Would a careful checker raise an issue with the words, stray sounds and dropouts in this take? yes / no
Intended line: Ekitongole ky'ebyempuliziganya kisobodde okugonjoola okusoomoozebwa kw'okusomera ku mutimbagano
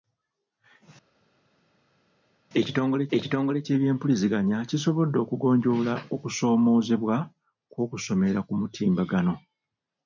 yes